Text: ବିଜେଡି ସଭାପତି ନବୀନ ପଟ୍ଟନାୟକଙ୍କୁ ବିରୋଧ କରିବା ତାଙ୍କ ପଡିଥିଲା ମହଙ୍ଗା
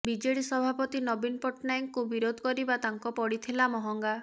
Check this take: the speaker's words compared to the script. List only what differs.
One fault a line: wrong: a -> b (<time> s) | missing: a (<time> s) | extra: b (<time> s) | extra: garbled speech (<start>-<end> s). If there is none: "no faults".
no faults